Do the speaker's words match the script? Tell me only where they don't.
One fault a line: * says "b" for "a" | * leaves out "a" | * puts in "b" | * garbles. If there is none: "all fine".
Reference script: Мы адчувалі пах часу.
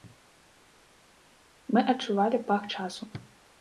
all fine